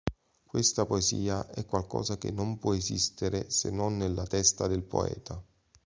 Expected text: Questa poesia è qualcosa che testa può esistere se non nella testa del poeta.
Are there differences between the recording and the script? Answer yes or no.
yes